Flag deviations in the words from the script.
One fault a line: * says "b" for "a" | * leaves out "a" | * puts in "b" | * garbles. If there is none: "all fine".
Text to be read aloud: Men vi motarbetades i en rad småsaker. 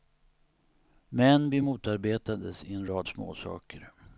all fine